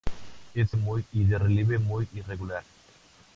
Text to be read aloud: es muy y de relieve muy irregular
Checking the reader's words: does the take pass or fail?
pass